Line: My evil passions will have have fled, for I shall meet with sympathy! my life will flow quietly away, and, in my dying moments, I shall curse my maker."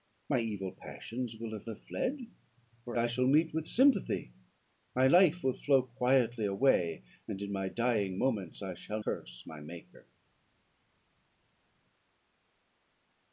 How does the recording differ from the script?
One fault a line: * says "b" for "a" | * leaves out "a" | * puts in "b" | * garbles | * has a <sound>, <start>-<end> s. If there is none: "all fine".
all fine